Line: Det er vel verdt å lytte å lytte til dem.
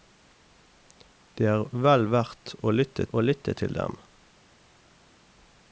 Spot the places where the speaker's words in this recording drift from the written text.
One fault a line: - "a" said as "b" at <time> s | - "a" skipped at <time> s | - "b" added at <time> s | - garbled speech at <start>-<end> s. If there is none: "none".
none